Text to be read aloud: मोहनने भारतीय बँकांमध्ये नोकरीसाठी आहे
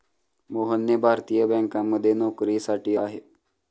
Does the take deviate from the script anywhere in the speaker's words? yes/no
no